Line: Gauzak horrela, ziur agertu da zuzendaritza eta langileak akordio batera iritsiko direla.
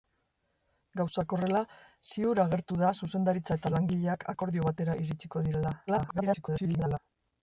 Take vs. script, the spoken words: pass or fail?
fail